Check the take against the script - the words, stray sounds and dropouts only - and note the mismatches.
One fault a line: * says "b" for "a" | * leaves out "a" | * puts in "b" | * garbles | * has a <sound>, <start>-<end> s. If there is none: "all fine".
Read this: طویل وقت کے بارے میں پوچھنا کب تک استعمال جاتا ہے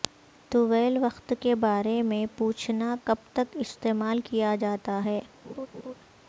* puts in "کیا"
* has a laugh, 5.4-5.9 s